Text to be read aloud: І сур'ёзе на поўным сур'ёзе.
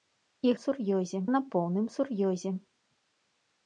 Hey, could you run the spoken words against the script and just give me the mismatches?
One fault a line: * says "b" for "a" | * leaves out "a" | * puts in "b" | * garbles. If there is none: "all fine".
all fine